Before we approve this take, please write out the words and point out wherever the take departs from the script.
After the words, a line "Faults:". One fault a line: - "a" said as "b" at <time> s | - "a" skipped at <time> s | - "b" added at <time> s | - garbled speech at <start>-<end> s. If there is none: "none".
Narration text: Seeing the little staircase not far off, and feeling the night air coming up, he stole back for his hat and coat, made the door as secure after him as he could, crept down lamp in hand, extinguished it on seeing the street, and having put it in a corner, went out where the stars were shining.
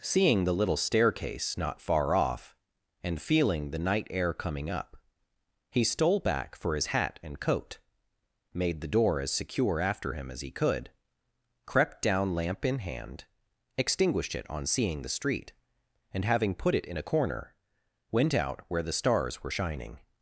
Seeing the little staircase not far off, and feeling the night air coming up, he stole back for his hat and coat, made the door as secure after him as he could, crept down lamp in hand, extinguished it on seeing the street, and having put it in a corner, went out where the stars were shining.
Faults:
none